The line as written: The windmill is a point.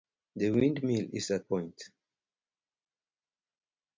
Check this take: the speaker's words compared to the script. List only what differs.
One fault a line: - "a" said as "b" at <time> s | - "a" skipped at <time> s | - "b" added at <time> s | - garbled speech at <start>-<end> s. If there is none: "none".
none